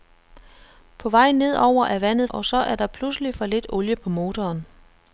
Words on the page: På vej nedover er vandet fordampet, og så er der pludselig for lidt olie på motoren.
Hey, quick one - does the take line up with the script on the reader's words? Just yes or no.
no